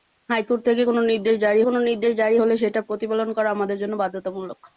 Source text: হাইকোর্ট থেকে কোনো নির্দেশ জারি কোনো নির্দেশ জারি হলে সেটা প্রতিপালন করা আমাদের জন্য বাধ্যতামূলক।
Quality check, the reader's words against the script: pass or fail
pass